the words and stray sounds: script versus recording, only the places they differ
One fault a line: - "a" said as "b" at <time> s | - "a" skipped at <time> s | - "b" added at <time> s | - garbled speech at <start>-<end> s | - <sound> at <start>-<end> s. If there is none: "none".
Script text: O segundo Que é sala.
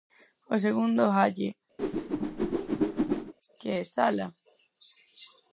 - "Halle" added at 1.1 s
- whoosh at 1.8-3.3 s